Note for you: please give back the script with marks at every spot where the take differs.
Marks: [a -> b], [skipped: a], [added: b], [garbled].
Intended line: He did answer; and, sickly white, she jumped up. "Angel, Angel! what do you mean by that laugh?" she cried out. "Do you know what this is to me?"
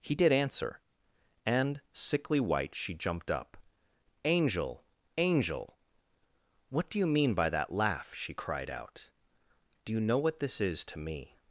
He did answer; and, sickly white, she jumped up. "Angel, Angel! what do you mean by that laugh?" she cried out. "Do you know what this is to me?"